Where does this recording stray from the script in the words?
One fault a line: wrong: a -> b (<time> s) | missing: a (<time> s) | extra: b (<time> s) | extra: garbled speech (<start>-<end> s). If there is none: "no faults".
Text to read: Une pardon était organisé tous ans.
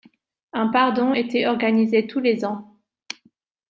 wrong: Une -> Un (0.5 s)
extra: les (2.2 s)